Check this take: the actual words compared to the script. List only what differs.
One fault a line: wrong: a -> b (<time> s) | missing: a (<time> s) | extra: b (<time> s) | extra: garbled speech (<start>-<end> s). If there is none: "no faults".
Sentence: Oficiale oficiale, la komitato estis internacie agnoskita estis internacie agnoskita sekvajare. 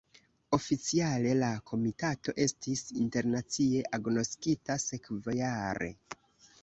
missing: oficiale (1.3 s)
missing: estis internacie agnoskita (4.8 s)